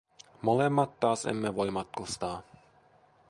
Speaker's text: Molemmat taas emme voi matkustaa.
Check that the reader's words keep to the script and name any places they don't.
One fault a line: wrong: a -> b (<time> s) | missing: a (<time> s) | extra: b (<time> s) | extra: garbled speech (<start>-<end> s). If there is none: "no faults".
no faults